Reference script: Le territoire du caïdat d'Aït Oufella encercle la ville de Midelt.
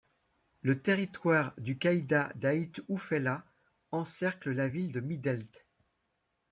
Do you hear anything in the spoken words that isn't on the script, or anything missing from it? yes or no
no